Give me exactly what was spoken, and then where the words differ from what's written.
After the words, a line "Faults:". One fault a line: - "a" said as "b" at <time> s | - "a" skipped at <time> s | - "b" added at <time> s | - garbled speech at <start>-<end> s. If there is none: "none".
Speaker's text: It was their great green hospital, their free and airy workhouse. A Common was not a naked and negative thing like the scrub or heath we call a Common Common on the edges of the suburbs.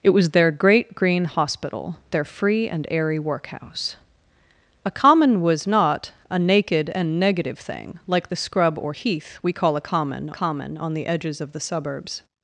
It was their great green hospital, their free and airy workhouse. A Common was not a naked and negative thing like the scrub or heath we call a Common Common on the edges of the suburbs.
Faults:
none